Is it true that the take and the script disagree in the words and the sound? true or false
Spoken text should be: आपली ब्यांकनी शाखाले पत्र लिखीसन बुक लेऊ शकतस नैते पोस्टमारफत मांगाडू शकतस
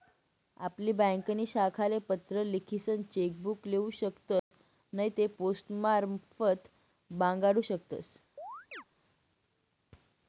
true